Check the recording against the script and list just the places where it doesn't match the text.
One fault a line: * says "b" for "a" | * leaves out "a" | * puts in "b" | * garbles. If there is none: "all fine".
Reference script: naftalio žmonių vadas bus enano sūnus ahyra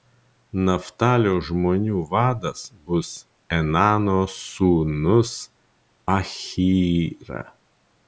all fine